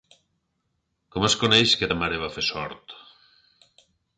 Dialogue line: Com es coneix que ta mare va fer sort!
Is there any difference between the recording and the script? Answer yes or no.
no